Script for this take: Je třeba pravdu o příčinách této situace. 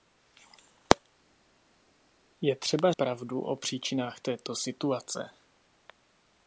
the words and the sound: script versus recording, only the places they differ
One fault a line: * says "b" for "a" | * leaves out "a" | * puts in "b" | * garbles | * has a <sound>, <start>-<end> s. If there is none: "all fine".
all fine